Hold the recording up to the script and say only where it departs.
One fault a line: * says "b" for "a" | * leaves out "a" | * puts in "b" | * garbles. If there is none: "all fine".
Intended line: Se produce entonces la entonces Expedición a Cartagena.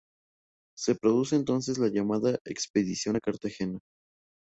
* says "llamada" for "entonces"